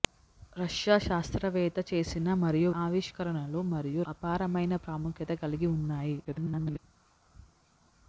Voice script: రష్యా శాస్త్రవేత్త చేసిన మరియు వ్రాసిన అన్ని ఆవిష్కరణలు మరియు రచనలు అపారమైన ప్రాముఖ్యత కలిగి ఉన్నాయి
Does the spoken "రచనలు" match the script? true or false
false